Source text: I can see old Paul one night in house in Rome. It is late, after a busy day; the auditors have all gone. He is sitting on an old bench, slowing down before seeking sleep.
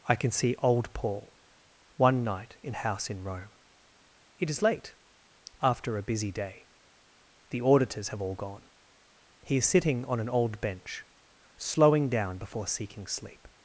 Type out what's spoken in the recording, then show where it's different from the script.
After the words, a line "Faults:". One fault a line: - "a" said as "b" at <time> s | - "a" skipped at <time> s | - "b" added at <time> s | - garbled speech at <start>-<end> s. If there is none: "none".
I can see old Paul one night in house in Rome. It is late, after a busy day; the auditors have all gone. He is sitting on an old bench, slowing down before seeking sleep.
Faults:
none